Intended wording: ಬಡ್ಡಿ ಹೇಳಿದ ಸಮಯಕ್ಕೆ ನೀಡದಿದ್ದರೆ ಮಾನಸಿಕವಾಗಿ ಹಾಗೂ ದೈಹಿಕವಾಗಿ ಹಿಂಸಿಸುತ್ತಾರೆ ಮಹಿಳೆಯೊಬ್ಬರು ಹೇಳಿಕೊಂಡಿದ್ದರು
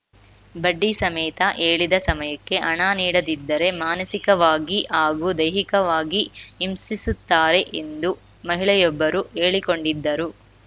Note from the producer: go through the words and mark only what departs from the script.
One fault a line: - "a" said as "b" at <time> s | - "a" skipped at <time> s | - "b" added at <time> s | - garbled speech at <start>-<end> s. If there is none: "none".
- "ಸಮೇತ" added at 1.0 s
- "ಹಣ" added at 2.6 s
- "ಎಂದು" added at 7.8 s